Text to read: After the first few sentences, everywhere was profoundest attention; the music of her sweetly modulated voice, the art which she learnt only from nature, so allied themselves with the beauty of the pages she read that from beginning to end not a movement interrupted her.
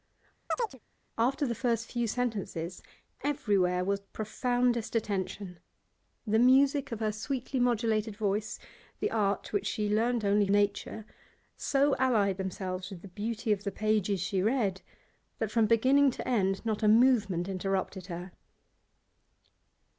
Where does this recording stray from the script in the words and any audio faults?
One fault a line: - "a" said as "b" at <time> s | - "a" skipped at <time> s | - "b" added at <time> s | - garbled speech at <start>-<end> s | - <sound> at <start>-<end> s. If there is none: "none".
- chirp at 0.5-0.8 s
- "from" skipped at 10.5 s